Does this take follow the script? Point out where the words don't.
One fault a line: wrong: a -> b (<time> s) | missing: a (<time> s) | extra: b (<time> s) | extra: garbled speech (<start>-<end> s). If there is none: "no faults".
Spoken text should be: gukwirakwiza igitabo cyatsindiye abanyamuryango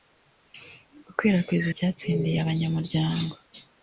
missing: igitabo (1.7 s)